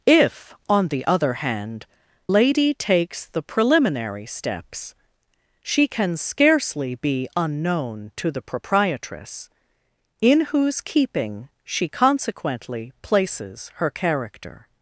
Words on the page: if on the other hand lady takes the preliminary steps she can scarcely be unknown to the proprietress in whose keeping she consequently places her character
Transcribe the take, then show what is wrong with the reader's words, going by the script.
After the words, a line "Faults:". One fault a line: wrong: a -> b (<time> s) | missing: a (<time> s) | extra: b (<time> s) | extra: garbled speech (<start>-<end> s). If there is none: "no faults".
if on the other hand lady takes the preliminary steps she can scarcely be unknown to the proprietress in whose keeping she consequently places her character
Faults:
no faults